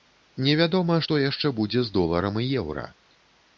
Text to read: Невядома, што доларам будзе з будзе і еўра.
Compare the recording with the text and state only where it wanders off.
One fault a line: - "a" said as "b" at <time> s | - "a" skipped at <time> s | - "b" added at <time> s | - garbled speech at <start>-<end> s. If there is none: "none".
- "доларам" said as "яшчэ" at 1.2 s
- "будзе" said as "доларам" at 2.0 s